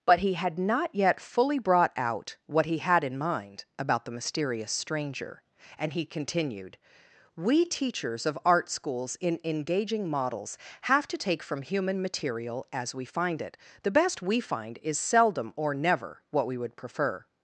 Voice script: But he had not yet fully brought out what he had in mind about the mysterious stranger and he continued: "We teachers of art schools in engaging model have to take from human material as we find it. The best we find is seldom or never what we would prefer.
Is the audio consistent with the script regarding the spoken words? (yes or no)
no